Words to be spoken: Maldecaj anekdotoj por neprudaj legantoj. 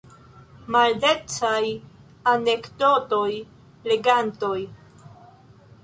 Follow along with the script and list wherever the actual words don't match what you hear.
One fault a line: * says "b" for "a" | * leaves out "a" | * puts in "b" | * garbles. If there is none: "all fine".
* leaves out "por neprudaj"